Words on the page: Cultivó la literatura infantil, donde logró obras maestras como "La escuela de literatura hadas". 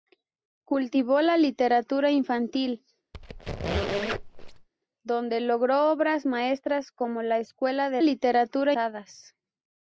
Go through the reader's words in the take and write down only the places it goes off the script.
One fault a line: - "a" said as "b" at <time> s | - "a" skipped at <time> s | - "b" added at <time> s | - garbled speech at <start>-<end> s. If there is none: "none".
none